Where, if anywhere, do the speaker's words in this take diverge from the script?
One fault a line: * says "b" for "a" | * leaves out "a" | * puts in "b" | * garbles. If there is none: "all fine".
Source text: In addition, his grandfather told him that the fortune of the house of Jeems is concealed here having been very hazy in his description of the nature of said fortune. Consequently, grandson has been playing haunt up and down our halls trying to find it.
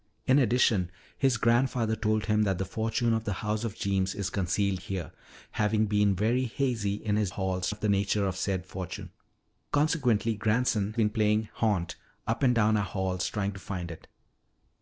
* says "halls" for "description"
* leaves out "has"